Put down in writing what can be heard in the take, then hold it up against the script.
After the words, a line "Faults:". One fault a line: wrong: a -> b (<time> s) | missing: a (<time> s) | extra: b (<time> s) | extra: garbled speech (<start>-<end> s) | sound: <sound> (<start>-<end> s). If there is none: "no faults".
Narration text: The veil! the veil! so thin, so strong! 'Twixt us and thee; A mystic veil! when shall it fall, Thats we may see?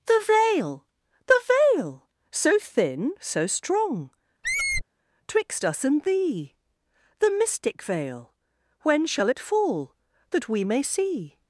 The veil! the veil! so thin, so strong! 'Twixt us and thee; The mystic veil! when shall it fall, That we may see?
Faults:
sound: squeak (4.4-4.8 s)
wrong: A -> The (7.2 s)
wrong: Thats -> That (10.3 s)